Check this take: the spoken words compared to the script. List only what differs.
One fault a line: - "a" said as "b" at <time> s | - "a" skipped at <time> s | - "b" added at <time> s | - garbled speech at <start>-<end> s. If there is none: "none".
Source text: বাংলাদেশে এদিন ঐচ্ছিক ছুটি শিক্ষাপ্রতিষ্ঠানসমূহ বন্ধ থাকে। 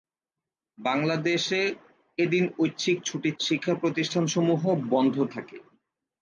none